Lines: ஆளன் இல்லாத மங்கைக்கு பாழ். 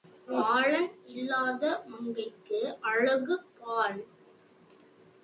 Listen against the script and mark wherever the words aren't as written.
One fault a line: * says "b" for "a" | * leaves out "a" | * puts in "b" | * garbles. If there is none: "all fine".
* puts in "அழகு"